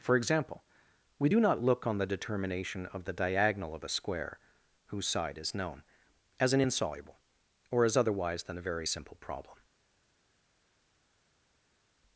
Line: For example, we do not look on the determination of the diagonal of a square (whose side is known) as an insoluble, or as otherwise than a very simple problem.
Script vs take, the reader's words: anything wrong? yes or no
no